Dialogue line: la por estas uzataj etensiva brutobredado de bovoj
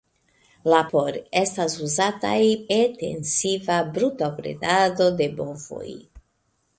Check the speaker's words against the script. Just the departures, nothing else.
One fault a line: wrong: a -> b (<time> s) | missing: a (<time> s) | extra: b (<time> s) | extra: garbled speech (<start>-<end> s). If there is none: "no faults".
no faults